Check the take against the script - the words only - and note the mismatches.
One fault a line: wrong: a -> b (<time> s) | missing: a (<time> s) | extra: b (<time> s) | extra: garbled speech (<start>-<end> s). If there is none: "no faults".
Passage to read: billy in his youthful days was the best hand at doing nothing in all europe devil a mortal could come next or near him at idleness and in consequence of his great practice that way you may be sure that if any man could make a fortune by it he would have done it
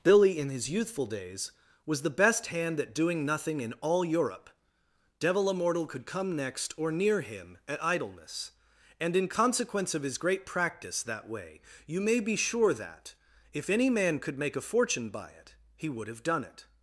no faults